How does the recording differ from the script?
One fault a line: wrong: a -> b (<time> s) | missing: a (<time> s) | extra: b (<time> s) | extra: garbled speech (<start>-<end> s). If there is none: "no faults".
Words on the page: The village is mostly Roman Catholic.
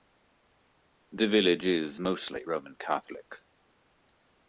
no faults